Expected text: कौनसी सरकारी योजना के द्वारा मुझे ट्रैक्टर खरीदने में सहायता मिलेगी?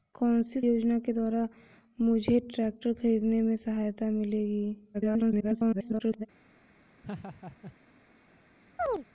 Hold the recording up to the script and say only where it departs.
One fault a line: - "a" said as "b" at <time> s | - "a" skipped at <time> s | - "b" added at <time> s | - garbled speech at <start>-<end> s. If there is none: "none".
- "सरकारी" skipped at 0.6 s
- garbled speech at 4.9-6.3 s